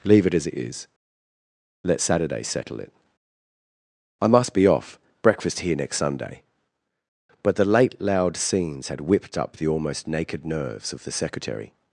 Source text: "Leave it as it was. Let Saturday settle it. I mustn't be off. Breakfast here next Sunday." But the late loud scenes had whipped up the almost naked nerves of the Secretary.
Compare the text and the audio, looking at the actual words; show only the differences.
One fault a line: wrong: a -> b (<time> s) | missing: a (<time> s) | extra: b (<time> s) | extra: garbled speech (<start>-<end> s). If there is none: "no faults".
wrong: was -> is (0.5 s)
wrong: mustn't -> must (4.3 s)